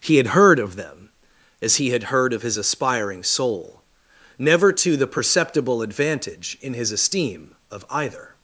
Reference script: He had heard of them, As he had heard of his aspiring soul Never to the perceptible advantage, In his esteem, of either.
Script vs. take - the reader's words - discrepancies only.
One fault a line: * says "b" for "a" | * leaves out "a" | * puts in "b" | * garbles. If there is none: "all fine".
all fine